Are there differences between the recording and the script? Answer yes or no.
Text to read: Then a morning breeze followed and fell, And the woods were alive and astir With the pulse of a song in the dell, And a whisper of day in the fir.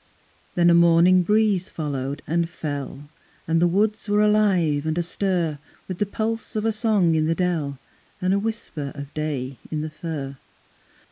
no